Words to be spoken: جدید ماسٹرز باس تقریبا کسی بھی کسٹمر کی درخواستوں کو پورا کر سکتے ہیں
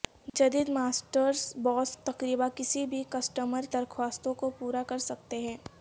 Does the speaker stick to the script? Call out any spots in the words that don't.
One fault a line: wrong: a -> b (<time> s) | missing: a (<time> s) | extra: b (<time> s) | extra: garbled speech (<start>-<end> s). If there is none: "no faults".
missing: کی (3.7 s)